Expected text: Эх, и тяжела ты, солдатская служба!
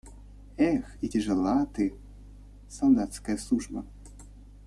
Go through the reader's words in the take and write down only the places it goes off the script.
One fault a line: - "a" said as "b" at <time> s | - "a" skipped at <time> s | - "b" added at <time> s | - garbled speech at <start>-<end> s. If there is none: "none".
none